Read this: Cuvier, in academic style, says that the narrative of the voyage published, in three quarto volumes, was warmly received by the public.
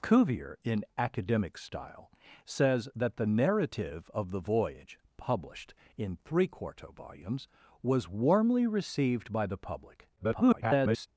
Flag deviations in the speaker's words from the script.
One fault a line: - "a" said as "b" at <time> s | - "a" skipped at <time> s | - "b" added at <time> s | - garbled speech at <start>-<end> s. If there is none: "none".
- garbled speech at 10.2-11.1 s